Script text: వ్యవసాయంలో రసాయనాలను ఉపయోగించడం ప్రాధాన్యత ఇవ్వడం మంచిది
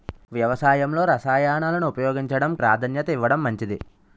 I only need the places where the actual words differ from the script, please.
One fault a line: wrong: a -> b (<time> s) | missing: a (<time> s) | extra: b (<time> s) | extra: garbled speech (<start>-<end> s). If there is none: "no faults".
no faults